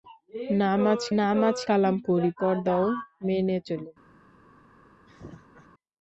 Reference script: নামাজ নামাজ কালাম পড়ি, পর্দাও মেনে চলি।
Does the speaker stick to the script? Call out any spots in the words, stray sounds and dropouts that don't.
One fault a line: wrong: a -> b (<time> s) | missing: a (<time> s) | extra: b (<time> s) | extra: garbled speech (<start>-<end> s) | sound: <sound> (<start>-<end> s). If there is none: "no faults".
sound: laugh (5.1-5.7 s)